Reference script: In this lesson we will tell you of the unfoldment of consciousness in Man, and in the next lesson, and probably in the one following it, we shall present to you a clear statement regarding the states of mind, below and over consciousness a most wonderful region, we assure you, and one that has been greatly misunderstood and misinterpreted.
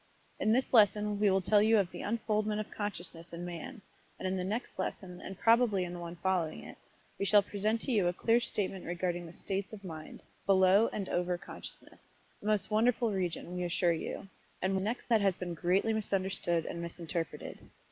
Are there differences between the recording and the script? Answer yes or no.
yes